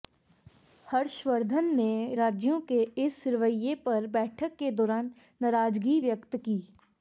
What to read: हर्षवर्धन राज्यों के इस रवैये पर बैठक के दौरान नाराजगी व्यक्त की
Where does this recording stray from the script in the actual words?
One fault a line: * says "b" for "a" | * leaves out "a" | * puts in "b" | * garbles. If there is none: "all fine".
* puts in "ने"